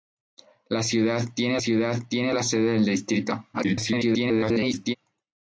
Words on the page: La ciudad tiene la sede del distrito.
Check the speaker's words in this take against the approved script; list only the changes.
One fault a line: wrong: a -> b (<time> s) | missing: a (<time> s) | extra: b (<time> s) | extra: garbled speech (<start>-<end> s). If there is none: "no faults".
extra: ciudad tiene (1.6 s)
extra: garbled speech (3.5-5.0 s)